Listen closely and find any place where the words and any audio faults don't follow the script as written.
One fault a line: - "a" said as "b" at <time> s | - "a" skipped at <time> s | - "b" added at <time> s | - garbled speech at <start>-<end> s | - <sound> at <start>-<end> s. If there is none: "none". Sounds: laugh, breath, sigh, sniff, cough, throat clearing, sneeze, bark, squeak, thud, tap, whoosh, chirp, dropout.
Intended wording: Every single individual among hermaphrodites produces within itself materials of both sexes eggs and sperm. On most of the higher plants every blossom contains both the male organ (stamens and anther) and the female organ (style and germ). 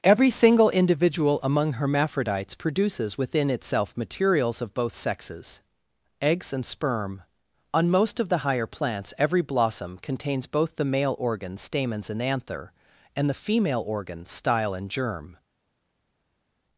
none